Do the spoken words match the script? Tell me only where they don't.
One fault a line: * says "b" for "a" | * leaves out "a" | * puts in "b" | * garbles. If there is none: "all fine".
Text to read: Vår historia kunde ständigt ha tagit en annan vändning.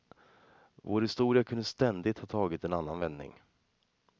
all fine